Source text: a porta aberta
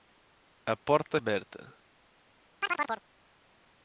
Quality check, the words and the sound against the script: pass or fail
fail